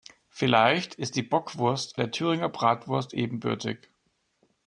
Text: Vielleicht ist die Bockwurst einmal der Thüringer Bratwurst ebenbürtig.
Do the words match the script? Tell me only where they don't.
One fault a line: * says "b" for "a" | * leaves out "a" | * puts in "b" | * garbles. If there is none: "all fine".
* leaves out "einmal"